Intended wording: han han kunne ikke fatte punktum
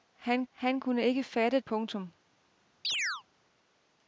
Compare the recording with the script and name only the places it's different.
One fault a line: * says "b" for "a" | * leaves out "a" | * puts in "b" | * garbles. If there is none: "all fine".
all fine